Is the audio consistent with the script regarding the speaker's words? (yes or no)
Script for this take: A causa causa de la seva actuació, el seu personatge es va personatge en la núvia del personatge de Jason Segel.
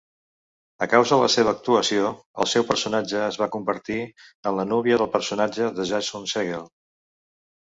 no